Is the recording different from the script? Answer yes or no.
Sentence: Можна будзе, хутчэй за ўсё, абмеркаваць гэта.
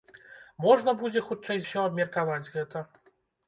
yes